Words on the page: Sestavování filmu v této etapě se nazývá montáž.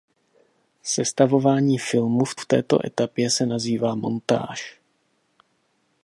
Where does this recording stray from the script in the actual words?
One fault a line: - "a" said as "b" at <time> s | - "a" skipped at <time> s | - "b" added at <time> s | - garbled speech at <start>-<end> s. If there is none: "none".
- "v" added at 2.4 s